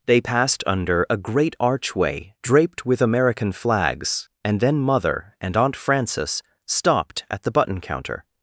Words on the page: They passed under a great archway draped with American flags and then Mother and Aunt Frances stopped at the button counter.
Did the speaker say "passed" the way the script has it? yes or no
yes